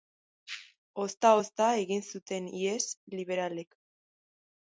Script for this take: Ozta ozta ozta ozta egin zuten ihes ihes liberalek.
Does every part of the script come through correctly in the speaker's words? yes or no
no